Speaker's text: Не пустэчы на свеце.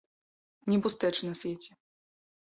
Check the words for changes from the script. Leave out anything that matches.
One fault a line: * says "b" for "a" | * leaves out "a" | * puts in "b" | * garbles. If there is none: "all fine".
all fine